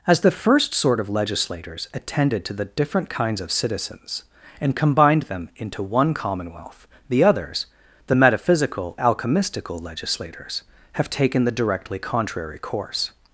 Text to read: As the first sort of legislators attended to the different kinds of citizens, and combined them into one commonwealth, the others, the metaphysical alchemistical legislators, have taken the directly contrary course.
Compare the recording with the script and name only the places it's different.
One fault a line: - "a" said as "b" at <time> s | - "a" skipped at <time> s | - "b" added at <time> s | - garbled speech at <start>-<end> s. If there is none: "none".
none